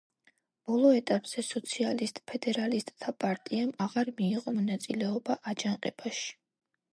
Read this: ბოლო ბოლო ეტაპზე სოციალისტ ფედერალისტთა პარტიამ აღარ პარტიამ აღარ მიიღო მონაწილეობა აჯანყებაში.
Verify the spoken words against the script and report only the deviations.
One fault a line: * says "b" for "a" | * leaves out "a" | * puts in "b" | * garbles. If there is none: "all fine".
* leaves out "ბოლო"
* leaves out "პარტიამ აღარ"